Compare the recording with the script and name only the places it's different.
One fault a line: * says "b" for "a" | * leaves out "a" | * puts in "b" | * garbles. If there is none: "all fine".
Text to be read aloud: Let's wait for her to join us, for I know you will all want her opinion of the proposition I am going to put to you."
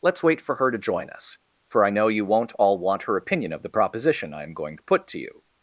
* says "won't" for "will"